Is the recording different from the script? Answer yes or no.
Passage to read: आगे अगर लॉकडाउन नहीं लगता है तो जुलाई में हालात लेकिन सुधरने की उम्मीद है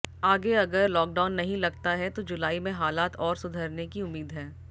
yes